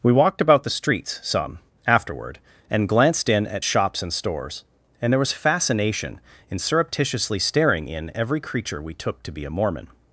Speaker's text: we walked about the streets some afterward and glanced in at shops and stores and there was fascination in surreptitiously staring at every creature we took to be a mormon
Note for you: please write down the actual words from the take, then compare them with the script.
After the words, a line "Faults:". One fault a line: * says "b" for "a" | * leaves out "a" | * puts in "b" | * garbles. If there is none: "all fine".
we walked about the streets some afterward and glanced in at shops and stores and there was fascination in surreptitiously staring in every creature we took to be a mormon
Faults:
* says "in" for "at"